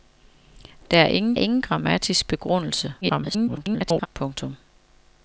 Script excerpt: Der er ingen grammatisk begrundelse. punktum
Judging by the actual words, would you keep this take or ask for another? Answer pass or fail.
fail